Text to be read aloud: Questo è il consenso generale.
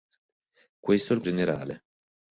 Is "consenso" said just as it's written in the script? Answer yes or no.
no